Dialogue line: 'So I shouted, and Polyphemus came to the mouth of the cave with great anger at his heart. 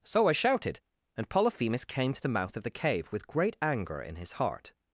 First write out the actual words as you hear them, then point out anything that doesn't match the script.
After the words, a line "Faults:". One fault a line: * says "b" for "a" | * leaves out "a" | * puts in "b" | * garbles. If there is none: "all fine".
'So I shouted, and Polyphemus came to the mouth of the cave with great anger in his heart.
Faults:
* says "in" for "at"